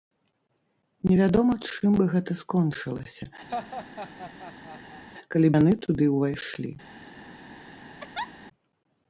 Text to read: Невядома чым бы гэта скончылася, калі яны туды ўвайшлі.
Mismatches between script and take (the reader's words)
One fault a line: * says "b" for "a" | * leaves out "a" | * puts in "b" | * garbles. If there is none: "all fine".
all fine